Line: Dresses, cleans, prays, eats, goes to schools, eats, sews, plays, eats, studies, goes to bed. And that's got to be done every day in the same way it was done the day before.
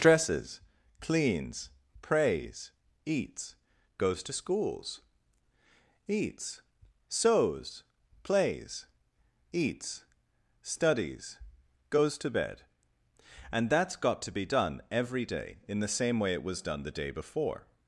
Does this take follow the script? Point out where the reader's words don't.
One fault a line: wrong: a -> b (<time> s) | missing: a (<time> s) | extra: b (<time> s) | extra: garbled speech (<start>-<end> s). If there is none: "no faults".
no faults